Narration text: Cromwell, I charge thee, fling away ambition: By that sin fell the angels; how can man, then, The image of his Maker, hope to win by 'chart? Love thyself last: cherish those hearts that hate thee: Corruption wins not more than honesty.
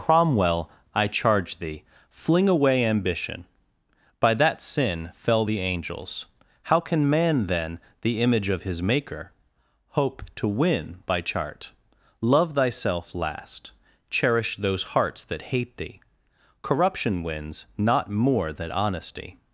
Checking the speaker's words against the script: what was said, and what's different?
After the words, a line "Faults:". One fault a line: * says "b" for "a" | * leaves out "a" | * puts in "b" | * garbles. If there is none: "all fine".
Cromwell, I charge thee, fling away ambition: By that sin fell the angels; how can man, then, The image of his Maker, hope to win by 'chart? Love thyself last: cherish those hearts that hate thee: Corruption wins not more than honesty.
Faults:
all fine